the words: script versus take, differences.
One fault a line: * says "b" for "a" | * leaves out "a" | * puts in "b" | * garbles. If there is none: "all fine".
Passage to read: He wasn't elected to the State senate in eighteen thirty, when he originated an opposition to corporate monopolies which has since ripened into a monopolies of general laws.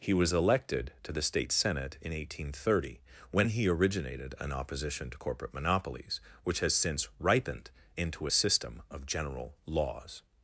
* says "was" for "wasn't"
* says "system" for "monopolies"